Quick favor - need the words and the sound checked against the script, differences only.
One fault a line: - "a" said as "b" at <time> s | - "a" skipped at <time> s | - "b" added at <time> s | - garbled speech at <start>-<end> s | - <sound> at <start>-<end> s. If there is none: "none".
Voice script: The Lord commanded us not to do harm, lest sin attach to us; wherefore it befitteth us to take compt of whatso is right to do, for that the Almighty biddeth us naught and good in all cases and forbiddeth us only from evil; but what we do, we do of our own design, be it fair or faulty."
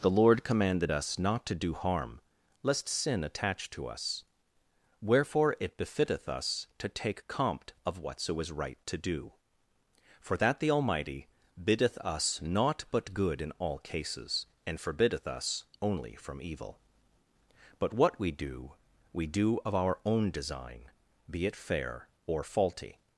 - "and" said as "but" at 12.9 s